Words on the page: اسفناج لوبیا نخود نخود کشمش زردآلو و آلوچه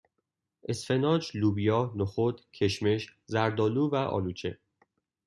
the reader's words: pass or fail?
fail